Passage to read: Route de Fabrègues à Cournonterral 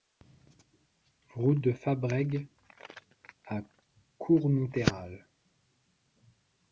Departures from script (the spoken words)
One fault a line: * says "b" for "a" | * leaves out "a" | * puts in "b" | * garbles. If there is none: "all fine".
all fine